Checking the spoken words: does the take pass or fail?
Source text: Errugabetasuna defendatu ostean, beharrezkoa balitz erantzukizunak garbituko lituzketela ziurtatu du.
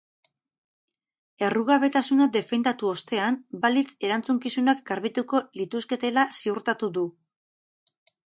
fail